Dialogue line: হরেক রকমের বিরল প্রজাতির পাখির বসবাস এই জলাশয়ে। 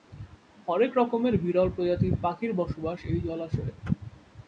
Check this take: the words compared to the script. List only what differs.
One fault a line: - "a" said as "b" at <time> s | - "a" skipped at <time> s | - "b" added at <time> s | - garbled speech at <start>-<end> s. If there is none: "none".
none